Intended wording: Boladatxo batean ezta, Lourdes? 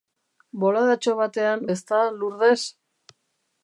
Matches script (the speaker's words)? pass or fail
pass